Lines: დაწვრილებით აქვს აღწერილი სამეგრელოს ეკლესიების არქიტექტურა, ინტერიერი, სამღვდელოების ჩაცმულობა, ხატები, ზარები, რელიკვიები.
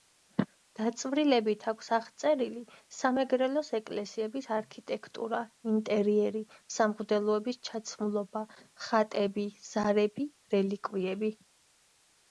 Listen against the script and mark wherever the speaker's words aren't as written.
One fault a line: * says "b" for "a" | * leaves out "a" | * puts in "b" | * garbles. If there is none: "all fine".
all fine